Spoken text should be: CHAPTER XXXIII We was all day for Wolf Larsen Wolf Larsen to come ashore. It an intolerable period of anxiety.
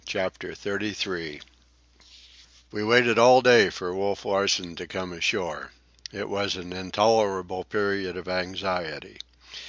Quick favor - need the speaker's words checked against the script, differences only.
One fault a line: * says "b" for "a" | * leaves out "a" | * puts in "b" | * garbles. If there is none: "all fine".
* says "waited" for "was"
* leaves out "Wolf Larsen"
* puts in "was"